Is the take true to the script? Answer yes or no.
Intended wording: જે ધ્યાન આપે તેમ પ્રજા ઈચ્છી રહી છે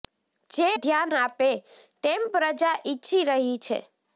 yes